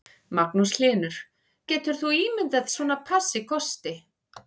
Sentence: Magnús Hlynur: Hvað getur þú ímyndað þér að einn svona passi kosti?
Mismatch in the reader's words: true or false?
true